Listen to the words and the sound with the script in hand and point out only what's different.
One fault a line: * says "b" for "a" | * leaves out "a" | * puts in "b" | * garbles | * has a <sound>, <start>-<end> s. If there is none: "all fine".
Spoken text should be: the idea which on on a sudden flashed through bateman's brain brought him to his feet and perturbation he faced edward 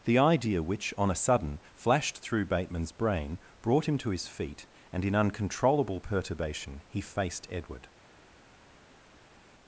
* leaves out "on"
* puts in "in uncontrollable"